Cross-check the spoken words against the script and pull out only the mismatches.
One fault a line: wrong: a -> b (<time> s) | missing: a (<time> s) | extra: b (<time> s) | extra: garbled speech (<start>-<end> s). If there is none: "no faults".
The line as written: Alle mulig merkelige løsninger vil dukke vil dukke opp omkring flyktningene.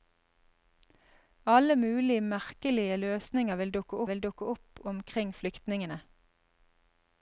no faults